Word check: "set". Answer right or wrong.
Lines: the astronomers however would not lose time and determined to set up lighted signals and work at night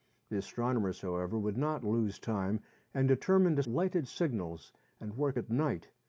wrong